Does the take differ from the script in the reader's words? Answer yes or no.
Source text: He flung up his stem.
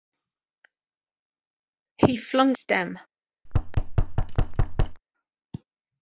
yes